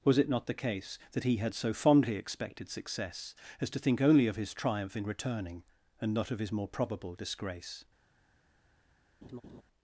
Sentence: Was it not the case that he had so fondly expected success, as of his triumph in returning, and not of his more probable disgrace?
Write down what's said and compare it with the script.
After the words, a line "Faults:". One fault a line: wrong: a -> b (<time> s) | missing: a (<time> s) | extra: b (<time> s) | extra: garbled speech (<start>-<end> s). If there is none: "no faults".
Was it not the case that he had so fondly expected success, as to think only of his triumph in returning, and not of his more probable disgrace?
Faults:
extra: to think only (3.7 s)